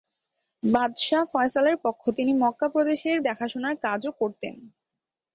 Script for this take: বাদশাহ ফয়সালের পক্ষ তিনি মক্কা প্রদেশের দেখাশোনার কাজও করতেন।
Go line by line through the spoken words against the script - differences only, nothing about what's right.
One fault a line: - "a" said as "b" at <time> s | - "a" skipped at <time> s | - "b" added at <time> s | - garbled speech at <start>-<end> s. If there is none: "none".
none